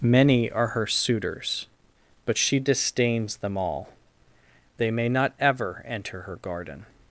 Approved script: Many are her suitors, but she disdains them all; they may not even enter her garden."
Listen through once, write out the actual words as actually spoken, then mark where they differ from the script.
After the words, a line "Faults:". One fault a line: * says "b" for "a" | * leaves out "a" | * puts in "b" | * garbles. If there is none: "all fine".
Many are her suitors, but she disdains them all; they may not ever enter her garden."
Faults:
* says "ever" for "even"